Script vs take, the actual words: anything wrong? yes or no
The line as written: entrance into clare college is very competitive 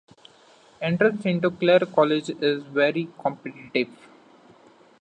no